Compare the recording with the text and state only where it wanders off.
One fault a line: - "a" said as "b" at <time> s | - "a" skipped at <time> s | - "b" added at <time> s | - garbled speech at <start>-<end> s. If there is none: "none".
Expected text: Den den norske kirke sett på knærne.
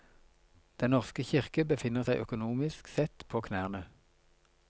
- "den" skipped at 0.9 s
- "befinner seg økonomisk" added at 1.7 s